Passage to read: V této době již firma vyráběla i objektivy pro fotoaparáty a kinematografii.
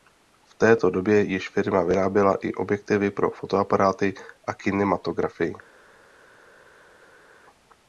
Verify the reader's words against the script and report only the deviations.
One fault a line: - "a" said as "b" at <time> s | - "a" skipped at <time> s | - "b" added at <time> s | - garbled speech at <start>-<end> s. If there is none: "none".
none